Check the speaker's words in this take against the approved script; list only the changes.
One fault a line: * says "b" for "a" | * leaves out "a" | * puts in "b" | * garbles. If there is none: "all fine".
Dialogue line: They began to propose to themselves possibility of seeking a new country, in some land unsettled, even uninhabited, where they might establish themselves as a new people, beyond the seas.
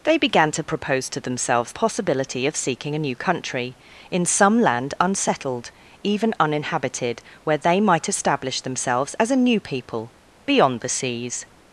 all fine